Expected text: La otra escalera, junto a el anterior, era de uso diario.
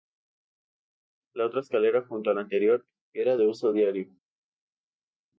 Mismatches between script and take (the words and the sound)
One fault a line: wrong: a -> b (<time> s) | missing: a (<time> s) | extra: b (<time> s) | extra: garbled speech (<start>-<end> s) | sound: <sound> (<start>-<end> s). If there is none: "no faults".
wrong: el -> la (2.3 s)